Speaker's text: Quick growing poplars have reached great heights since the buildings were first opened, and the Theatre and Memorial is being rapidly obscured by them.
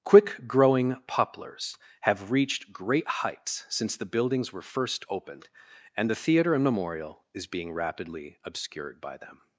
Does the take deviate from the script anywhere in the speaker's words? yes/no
no